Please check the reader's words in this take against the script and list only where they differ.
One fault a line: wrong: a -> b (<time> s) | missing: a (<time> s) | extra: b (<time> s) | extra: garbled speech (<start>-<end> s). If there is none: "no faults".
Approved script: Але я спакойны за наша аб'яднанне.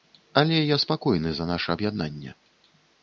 no faults